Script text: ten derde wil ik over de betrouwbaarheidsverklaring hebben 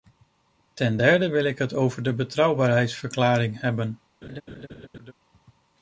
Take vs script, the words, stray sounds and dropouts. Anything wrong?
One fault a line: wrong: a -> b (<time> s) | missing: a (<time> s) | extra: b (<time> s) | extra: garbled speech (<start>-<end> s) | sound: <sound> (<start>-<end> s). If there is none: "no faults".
extra: het (1.6 s)
sound: laugh (4.2-5.1 s)